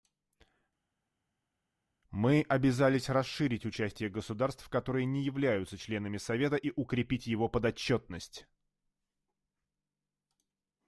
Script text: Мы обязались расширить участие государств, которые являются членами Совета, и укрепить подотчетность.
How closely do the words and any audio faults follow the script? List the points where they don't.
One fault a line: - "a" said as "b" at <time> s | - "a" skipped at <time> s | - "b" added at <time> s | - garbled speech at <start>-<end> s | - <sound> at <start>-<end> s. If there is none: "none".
- "не" added at 5.0 s
- "его" added at 7.3 s